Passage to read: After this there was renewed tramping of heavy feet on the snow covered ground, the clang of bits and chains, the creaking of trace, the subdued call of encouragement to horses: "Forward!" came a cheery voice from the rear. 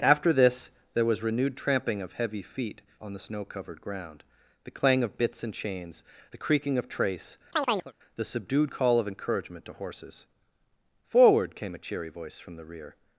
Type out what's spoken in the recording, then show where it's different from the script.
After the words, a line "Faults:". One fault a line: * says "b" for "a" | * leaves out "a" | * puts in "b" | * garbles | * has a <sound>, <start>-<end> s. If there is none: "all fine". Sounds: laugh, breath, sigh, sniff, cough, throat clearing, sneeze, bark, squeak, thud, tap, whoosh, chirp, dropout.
After this there was renewed tramping of heavy feet on the snow covered ground, the clang of bits and chains, the creaking of trace, the subdued call of encouragement to horses: "Forward!" came a cheery voice from the rear.
Faults:
* has a chirp, 7.5-7.9 s